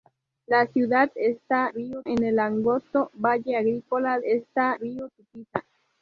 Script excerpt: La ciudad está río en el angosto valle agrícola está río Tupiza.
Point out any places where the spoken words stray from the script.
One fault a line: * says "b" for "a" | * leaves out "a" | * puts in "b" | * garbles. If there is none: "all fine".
all fine